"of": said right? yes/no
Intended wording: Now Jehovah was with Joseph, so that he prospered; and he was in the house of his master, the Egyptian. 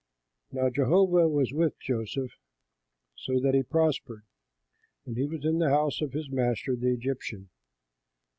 yes